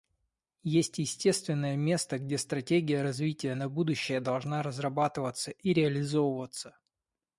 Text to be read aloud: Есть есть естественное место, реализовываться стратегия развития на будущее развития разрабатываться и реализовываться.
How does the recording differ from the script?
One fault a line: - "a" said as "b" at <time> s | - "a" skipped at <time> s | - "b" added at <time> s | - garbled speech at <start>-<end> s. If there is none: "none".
- "есть" skipped at 1.0 s
- "реализовываться" said as "где" at 2.2 s
- "развития" said as "должна" at 4.2 s